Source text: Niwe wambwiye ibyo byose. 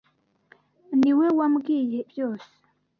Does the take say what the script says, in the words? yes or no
no